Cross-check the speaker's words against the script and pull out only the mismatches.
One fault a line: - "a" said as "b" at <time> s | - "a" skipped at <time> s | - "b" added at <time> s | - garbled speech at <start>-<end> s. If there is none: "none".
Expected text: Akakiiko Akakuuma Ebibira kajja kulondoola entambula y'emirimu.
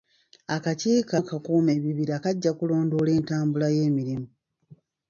none